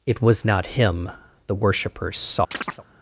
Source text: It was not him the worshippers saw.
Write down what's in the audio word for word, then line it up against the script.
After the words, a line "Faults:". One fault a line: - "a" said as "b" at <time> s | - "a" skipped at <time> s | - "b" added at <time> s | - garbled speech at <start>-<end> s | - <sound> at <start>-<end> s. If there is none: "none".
It was not him the worshippers saw.
Faults:
- chirp at 2.5-2.8 s